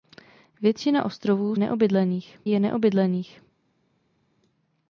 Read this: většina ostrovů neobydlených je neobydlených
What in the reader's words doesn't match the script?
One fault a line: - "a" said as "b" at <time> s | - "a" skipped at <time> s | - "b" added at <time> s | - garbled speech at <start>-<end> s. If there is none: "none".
none